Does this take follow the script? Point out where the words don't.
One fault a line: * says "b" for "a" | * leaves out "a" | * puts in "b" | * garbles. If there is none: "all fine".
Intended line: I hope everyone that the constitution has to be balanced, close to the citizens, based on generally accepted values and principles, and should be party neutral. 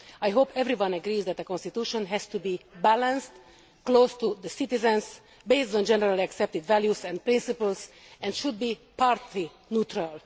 * puts in "agrees"